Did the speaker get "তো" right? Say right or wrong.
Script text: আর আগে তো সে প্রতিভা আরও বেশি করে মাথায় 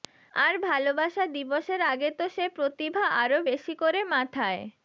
right